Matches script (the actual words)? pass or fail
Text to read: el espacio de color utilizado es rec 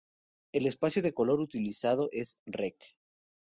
pass